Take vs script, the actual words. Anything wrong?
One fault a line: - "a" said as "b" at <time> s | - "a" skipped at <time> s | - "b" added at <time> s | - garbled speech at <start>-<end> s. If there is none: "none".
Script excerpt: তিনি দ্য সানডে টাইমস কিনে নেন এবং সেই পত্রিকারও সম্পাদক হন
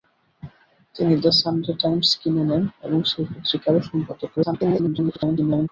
- garbled speech at 4.4-5.7 s